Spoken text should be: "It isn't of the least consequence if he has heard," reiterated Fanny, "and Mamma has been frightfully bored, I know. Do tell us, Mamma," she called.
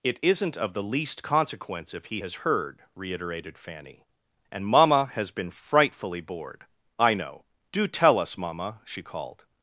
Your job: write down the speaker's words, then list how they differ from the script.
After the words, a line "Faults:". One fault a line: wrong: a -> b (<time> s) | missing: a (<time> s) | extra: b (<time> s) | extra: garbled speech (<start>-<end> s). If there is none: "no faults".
"It isn't of the least consequence if he has heard," reiterated Fanny, "and Mamma has been frightfully bored, I know. Do tell us, Mamma," she called.
Faults:
no faults